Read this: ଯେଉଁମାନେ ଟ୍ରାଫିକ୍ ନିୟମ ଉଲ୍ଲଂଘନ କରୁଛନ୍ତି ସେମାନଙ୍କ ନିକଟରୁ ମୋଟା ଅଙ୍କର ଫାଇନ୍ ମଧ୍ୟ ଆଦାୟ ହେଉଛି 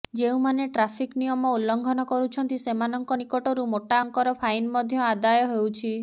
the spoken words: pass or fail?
pass